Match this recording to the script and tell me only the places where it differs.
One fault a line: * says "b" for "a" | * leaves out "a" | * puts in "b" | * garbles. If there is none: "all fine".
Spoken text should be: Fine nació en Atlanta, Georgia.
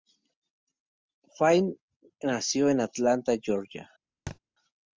all fine